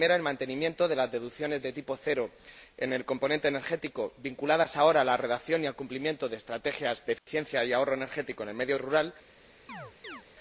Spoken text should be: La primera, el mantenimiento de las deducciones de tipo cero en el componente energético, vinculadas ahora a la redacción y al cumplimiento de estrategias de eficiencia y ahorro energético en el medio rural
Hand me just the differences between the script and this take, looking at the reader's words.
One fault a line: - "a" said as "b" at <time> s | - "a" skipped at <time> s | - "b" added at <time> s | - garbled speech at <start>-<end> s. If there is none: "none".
none